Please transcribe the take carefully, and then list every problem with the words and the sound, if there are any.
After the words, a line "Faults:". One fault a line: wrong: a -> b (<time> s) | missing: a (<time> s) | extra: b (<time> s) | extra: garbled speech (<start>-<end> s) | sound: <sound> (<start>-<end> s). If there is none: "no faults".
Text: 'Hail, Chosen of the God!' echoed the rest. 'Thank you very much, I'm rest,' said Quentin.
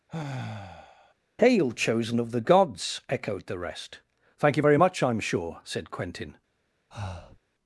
'Hail, Chosen of the Gods!' echoed the rest. 'Thank you very much, I'm sure,' said Quentin.
Faults:
sound: sigh (0.1-1.1 s)
wrong: God -> Gods (2.4 s)
wrong: rest -> sure (5.2 s)
sound: breath (6.9-7.4 s)